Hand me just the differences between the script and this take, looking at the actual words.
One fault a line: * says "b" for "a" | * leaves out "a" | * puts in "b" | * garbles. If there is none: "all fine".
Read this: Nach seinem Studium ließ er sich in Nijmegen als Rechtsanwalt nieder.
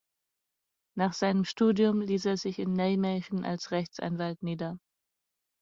all fine